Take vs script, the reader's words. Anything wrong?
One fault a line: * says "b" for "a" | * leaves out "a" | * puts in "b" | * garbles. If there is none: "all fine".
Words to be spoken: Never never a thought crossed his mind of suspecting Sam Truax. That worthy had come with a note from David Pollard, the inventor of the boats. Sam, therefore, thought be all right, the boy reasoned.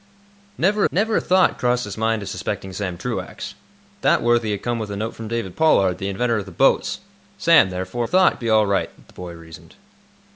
all fine